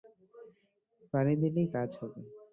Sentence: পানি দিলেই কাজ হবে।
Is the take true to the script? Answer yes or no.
yes